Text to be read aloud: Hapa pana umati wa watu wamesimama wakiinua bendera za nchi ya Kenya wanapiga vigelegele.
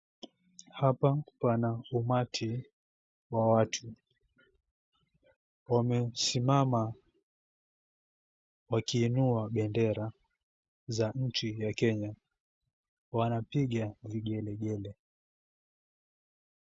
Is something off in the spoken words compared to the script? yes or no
no